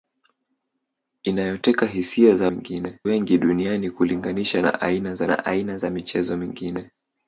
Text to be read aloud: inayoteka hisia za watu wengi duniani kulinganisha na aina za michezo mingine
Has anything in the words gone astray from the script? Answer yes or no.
yes